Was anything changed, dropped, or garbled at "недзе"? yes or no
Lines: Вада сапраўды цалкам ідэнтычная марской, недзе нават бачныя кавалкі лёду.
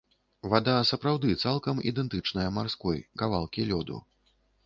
yes